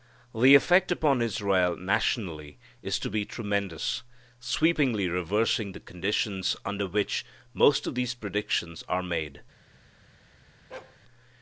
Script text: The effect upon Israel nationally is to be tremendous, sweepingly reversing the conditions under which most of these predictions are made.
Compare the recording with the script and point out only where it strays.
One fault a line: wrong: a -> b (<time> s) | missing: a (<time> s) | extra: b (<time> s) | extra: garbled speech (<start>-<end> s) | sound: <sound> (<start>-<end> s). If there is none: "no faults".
sound: bark (10.7-11.0 s)